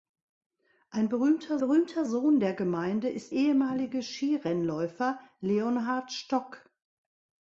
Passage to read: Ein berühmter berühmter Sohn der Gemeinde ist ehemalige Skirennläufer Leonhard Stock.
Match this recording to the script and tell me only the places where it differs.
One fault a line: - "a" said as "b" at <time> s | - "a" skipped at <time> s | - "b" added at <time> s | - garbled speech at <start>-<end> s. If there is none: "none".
none